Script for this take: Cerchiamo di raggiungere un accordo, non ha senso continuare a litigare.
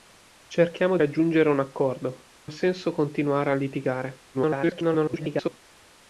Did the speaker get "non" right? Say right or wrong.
wrong